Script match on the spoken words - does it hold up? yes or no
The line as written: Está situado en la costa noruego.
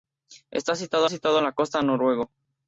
no